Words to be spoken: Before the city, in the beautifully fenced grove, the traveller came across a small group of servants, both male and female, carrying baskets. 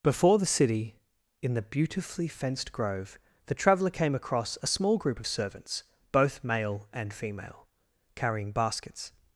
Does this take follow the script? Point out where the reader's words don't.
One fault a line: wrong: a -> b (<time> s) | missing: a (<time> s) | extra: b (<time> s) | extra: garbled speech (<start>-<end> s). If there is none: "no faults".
no faults